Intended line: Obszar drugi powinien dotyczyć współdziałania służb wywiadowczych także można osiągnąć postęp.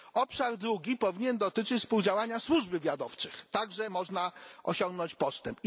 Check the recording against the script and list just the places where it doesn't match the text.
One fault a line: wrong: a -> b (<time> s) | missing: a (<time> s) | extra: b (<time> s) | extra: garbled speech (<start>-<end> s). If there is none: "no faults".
no faults